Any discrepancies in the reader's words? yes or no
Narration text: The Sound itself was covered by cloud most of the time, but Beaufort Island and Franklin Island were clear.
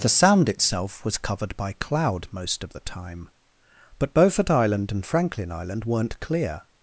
yes